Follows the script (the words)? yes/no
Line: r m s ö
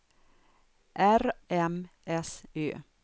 yes